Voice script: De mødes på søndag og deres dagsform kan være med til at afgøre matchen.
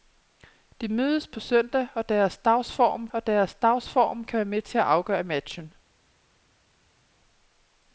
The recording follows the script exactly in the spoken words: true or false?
false